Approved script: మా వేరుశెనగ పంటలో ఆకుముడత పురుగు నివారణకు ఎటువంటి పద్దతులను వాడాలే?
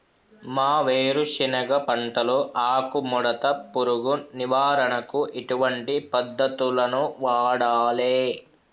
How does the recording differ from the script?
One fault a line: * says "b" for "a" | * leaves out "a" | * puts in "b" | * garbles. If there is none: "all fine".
all fine